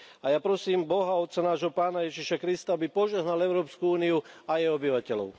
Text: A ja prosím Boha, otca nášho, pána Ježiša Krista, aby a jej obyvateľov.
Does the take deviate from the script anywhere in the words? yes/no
yes